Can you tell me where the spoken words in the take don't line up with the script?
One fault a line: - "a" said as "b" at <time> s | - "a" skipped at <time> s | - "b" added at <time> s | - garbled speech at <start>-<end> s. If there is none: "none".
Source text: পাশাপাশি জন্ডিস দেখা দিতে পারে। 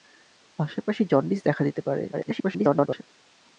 - garbled speech at 2.1-3.0 s